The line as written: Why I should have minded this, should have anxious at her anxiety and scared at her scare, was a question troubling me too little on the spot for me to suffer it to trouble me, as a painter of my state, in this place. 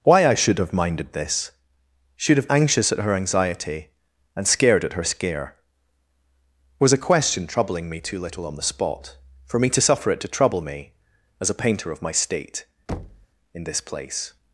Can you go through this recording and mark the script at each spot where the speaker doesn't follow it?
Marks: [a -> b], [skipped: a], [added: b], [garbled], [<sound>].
Why I should have minded this, should have anxious at her anxiety and scared at her scare, was a question troubling me too little on the spot for me to suffer it to trouble me, as a painter of my state, [thud] in this place.